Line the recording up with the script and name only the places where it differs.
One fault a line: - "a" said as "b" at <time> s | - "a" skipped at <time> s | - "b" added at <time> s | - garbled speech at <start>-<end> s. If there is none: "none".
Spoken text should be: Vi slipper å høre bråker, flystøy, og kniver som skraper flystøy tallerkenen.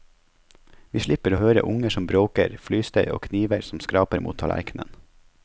- "unger som" added at 1.7 s
- "flystøy" said as "mot" at 4.3 s